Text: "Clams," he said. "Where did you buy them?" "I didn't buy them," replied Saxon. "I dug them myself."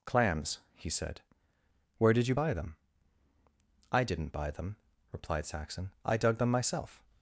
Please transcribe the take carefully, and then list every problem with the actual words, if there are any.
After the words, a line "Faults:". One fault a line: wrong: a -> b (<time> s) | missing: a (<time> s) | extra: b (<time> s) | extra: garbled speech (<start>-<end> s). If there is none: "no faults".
"Clams," he said. "Where did you buy them?" "I didn't buy them," replied Saxon. "I dug them myself."
Faults:
no faults